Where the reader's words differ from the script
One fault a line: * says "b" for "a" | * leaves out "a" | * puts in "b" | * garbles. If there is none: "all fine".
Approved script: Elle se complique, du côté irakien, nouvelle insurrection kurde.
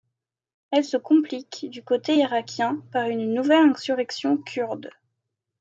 * puts in "par une"